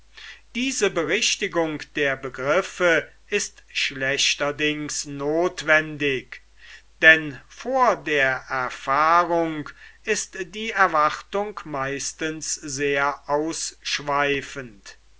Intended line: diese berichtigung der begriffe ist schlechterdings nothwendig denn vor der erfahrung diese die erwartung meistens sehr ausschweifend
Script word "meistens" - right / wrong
right